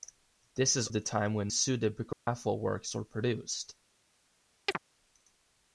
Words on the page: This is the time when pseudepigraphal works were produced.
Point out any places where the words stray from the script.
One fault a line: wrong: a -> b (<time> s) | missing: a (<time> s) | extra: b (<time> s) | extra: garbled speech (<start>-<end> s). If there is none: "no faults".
no faults